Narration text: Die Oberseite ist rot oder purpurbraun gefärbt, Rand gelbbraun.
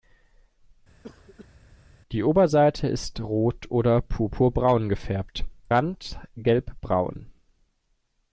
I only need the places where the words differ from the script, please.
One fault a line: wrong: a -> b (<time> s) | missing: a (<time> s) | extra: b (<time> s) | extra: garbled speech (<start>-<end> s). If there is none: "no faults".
no faults